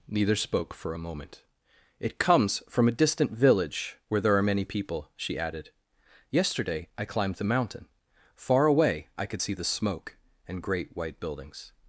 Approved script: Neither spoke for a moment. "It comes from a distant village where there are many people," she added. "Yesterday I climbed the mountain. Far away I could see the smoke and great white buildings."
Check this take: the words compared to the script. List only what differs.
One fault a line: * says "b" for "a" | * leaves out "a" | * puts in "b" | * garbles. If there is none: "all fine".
all fine